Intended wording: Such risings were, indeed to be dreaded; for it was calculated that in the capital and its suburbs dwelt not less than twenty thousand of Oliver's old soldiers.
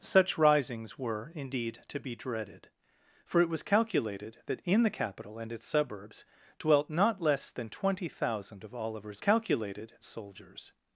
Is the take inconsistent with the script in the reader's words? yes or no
yes